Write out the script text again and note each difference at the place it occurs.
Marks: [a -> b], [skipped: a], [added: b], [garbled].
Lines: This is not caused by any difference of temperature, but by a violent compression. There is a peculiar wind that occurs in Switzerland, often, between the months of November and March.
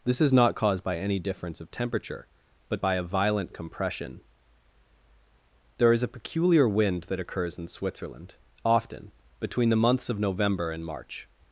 This is not caused by any difference of temperature, but by a violent compression. There is a peculiar wind that occurs in Switzerland, often, between the months of November and March.